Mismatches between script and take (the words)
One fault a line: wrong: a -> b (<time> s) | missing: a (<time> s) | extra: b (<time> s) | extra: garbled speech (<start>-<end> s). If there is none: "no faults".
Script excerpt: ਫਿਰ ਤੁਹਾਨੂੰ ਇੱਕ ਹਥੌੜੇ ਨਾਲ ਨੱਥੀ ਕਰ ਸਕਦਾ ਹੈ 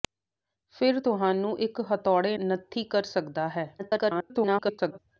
missing: ਨਾਲ (2.4 s)
extra: garbled speech (3.8-5.0 s)